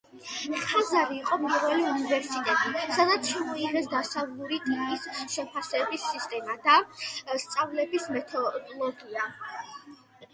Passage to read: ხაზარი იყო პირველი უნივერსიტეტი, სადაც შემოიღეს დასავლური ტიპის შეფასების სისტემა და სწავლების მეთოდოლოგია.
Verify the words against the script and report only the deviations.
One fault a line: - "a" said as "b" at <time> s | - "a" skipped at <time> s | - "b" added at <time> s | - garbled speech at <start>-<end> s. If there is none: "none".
none